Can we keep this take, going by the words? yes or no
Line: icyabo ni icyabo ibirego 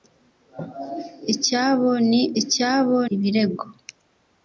yes